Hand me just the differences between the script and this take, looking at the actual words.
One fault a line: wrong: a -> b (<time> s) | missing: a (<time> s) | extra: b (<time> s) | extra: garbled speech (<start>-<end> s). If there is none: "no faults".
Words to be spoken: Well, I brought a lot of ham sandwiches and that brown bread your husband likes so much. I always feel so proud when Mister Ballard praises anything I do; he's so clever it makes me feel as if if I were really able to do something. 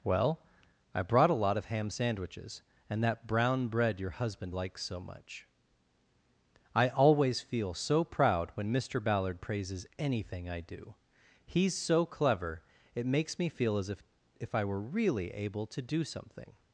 no faults